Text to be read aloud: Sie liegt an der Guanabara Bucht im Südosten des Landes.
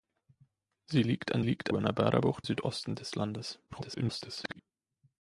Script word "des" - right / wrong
right